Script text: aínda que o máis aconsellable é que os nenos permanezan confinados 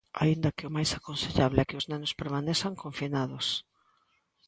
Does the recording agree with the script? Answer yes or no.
yes